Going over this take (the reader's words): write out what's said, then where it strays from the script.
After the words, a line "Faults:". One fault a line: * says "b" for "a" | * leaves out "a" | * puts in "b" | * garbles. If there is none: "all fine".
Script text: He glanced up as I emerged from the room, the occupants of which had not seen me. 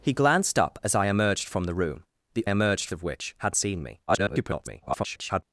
He glanced up as I emerged from the room, the emerged of which had seen me. [garbled]
Faults:
* says "emerged" for "occupants"
* leaves out "not"
* garbles